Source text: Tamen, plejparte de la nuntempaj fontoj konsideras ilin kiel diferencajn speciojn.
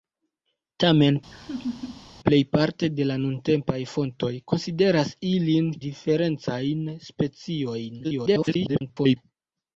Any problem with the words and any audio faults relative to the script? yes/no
yes